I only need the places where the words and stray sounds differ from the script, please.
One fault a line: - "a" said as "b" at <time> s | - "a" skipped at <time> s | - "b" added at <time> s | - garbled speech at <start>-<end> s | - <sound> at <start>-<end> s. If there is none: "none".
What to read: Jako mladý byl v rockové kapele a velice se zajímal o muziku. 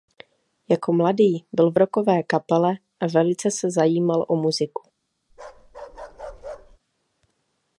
- bark at 5.3-6.8 s